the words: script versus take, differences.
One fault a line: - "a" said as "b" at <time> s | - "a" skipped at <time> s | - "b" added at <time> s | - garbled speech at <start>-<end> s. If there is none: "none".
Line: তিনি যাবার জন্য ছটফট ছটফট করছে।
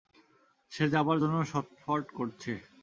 - "তিনি" said as "সে" at 0.7 s
- "ছটফট" skipped at 2.0 s